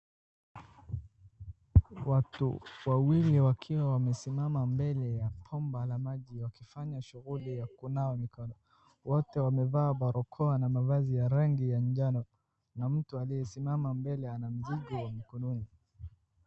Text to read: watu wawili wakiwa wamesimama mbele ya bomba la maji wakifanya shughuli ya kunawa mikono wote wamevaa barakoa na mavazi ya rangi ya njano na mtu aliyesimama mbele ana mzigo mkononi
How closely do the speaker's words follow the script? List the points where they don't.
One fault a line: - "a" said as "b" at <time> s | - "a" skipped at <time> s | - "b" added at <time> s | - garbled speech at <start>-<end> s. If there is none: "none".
none